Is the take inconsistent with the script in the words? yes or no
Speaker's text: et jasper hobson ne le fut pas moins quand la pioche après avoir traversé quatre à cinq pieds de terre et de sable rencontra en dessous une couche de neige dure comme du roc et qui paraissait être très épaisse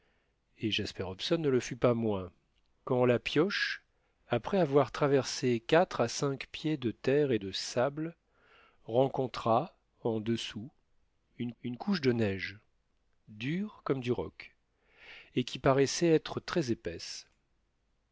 yes